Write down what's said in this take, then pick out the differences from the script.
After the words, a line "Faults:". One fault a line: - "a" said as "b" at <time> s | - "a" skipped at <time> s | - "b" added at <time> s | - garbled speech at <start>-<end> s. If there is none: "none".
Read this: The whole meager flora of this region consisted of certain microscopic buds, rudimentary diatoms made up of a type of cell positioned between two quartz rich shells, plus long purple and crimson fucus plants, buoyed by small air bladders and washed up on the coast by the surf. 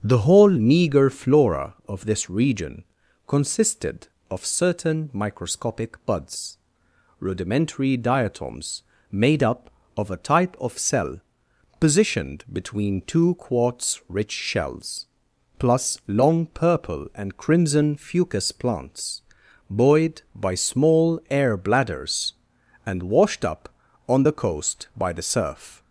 The whole meager flora of this region consisted of certain microscopic buds, rudimentary diatoms made up of a type of cell positioned between two quartz rich shells, plus long purple and crimson fucus plants, buoyed by small air bladders and washed up on the coast by the surf.
Faults:
none